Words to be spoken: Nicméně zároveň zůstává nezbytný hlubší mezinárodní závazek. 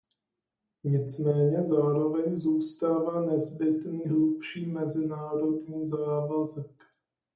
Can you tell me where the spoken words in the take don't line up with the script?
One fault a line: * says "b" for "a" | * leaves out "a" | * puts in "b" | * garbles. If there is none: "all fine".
all fine